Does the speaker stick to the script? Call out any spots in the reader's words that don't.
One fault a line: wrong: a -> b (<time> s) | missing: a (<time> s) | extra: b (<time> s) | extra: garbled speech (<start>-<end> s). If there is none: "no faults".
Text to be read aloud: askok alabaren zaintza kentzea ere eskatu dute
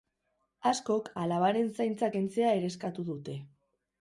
no faults